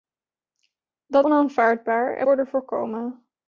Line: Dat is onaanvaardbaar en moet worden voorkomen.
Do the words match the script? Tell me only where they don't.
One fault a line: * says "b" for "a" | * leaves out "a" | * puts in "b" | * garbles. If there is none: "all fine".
* leaves out "is"
* leaves out "moet"